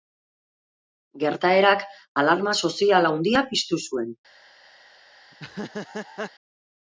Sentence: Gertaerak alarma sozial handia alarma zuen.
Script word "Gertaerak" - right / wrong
right